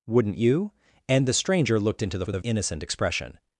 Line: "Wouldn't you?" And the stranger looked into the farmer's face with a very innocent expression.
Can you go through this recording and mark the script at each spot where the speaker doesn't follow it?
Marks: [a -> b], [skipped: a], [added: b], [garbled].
"Wouldn't you?" And the stranger looked into the [skipped: farmer's face] with a [skipped: very] innocent expression.